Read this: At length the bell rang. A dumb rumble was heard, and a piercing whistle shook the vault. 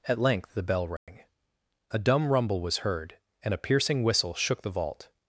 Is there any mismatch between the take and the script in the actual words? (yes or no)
no